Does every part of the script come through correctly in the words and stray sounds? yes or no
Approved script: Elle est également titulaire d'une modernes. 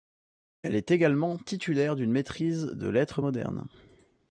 no